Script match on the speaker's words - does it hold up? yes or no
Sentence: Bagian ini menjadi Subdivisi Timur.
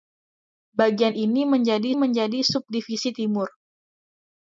no